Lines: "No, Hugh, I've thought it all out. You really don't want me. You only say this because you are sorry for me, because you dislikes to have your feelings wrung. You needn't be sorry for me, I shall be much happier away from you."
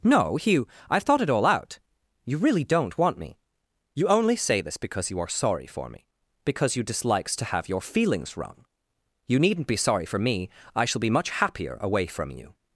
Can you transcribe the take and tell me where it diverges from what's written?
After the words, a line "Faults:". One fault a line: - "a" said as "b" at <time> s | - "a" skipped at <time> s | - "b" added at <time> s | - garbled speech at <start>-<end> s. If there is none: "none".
"No, Hugh, I've thought it all out. You really don't want me. You only say this because you are sorry for me, because you dislikes to have your feelings wrung. You needn't be sorry for me, I shall be much happier away from you."
Faults:
none